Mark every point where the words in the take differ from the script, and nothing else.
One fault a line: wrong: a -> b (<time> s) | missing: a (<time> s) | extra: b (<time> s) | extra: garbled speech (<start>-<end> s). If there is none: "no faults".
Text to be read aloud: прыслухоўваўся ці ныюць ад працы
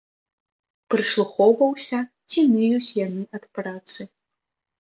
extra: яны (3.0 s)